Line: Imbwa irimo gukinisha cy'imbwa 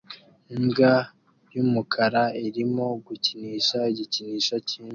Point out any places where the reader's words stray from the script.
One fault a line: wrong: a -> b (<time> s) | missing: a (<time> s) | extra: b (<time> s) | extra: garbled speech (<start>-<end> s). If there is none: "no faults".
extra: y'umukara (1.5 s)
extra: igikinisho (3.9 s)